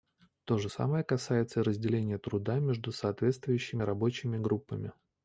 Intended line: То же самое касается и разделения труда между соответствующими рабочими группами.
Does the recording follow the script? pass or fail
pass